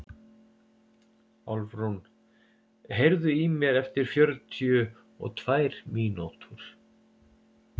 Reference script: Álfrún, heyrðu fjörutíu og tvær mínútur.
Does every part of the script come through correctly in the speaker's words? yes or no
no